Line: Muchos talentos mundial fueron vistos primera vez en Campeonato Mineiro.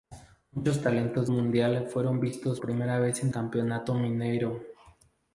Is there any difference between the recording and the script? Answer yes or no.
no